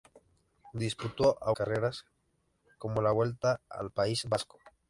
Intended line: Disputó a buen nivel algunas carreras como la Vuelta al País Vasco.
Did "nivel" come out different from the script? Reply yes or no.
yes